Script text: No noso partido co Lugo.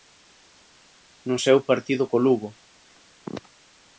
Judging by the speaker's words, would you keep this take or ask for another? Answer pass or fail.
fail